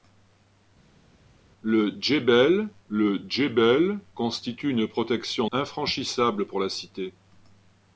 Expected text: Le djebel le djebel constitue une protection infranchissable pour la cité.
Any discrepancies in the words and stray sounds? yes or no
no